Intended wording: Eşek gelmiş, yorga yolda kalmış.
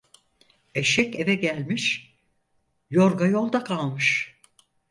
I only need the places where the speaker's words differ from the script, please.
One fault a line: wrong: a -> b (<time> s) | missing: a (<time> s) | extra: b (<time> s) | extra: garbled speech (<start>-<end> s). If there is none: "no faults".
extra: eve (1.2 s)